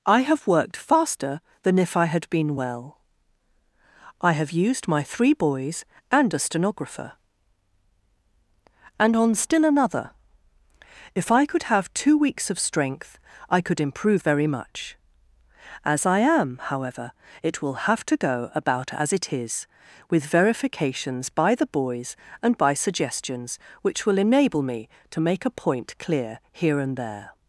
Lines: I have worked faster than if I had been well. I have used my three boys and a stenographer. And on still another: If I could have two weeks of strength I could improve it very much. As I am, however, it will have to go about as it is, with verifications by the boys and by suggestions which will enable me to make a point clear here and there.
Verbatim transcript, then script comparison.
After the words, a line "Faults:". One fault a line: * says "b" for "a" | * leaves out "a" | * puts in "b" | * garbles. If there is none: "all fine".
I have worked faster than if I had been well. I have used my three boys and a stenographer. And on still another: If I could have two weeks of strength I could improve very much. As I am, however, it will have to go about as it is, with verifications by the boys and by suggestions which will enable me to make a point clear here and there.
Faults:
* leaves out "it"